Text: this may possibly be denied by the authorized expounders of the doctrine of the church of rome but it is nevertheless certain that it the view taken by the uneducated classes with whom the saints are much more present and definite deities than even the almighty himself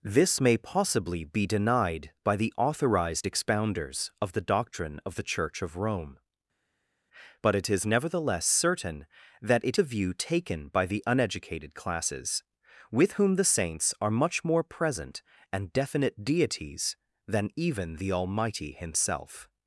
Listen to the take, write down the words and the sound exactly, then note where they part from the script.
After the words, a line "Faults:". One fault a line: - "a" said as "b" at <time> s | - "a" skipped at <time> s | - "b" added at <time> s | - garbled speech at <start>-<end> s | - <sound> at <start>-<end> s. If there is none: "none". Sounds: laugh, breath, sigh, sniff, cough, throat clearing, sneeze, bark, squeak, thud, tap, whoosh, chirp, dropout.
this may possibly be denied by the authorized expounders of the doctrine of the church of rome but it is nevertheless certain that it the view taken by the uneducated classes with whom the saints are much more present and definite deities than even the almighty himself
Faults:
none